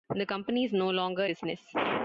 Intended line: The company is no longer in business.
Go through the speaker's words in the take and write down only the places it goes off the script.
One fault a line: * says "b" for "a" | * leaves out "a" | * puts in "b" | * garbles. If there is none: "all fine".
* leaves out "in"